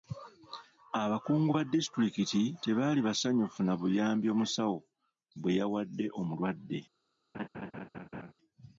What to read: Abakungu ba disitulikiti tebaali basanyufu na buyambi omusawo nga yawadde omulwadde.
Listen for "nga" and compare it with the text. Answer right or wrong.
wrong